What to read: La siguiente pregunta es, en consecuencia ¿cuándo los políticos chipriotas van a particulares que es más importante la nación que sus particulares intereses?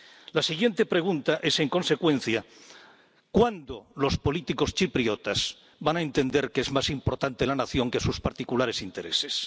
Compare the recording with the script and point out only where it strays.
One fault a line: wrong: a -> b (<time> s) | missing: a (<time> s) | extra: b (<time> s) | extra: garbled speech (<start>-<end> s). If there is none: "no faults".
wrong: particulares -> entender (6.0 s)